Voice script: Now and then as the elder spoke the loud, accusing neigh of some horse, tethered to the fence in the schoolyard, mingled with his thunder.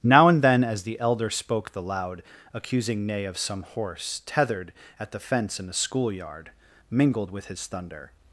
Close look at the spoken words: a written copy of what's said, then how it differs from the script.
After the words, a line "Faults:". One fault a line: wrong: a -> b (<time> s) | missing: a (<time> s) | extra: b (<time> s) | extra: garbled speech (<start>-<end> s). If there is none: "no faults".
Now and then as the elder spoke the loud, accusing neigh of some horse, tethered at the fence in the schoolyard, mingled with his thunder.
Faults:
wrong: to -> at (5.0 s)